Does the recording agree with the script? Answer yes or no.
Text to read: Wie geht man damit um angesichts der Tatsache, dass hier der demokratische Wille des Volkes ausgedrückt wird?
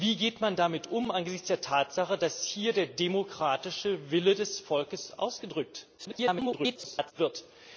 no